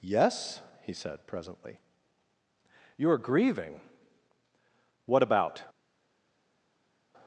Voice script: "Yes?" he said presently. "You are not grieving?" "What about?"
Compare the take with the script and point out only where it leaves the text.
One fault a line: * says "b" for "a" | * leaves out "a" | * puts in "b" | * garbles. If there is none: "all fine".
* leaves out "not"